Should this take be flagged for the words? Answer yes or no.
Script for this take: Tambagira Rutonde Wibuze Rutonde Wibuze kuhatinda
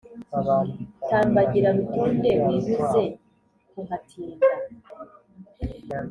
yes